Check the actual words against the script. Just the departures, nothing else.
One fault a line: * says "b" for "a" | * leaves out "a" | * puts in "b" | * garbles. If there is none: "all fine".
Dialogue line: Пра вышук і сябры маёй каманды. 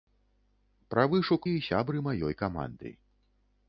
all fine